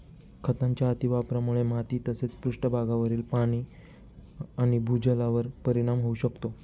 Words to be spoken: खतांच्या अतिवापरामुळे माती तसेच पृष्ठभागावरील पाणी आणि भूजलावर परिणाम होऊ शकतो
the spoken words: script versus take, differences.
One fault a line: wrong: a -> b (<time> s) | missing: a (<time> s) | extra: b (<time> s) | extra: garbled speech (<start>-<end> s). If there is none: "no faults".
no faults